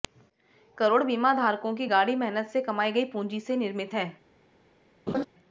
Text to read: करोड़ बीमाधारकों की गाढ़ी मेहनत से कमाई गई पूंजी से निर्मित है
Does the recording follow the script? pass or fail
pass